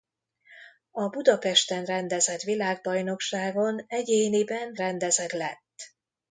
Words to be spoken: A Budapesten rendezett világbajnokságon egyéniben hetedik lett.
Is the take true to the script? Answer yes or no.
no